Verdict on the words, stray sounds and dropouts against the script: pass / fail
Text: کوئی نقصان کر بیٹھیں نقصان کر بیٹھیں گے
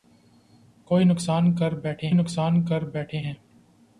pass